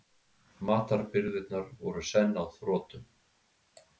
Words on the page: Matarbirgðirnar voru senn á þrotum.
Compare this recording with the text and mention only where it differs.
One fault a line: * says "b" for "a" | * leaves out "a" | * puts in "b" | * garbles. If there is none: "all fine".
all fine